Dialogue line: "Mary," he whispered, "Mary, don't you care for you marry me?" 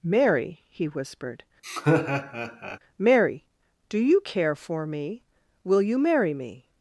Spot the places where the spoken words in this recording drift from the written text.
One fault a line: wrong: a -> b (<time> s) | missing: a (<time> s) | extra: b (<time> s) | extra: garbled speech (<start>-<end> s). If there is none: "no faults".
wrong: don't -> do (3.9 s)
extra: me Will (4.9 s)